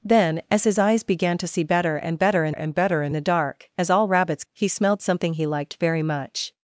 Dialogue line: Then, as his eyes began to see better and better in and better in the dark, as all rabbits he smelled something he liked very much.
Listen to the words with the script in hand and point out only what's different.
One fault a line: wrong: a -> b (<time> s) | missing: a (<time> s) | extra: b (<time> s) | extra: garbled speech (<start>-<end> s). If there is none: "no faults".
no faults